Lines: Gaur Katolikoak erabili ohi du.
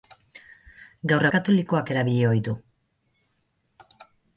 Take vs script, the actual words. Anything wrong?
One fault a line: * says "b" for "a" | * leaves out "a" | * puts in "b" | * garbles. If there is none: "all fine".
all fine